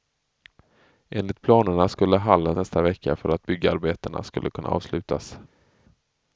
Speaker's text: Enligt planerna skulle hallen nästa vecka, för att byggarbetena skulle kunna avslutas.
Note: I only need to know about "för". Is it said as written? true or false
true